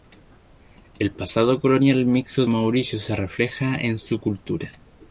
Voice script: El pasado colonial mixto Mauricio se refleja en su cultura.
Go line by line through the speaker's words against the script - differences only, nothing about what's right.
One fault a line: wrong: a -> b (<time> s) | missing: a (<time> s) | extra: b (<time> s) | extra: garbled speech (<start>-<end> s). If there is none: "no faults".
no faults